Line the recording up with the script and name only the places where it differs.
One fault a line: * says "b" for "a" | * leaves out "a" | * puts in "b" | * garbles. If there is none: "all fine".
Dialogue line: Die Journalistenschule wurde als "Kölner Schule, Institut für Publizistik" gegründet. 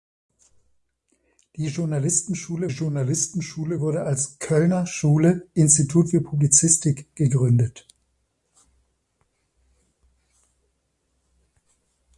* puts in "Journalistenschule"